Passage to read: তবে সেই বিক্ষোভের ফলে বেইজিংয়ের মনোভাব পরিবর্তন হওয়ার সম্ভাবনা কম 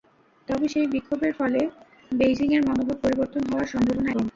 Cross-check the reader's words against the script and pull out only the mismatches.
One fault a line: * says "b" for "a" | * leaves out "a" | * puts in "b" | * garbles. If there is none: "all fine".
all fine